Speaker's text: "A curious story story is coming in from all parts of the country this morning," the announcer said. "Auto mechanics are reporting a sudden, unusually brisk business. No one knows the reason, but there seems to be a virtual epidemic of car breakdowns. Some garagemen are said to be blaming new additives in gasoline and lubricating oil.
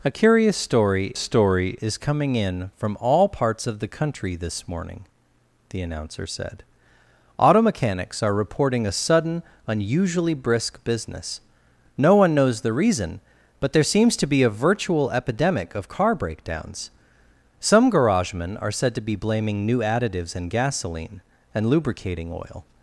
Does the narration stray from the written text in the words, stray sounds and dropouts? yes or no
no